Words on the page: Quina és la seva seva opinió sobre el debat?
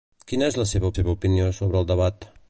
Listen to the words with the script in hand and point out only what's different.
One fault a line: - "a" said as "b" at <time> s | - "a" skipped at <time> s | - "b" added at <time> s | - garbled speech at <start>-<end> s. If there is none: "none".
none